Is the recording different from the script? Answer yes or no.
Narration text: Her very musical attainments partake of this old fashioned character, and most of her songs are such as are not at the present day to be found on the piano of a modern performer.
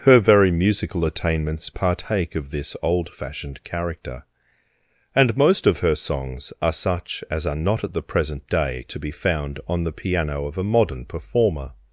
no